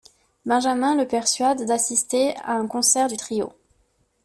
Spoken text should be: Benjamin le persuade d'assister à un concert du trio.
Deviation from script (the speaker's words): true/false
false